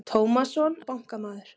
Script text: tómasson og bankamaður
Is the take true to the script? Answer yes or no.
yes